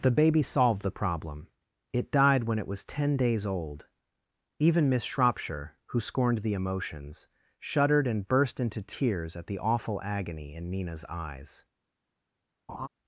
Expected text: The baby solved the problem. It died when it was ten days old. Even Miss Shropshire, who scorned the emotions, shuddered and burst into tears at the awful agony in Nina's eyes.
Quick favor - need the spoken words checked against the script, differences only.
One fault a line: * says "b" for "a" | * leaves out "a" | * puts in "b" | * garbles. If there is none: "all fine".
all fine